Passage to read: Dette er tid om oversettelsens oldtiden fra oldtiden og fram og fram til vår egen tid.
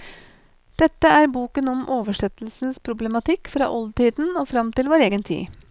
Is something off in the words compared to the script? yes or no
yes